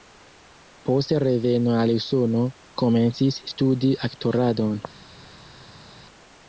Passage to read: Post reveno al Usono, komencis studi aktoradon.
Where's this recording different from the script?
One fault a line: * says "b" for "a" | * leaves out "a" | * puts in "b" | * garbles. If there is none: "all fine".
all fine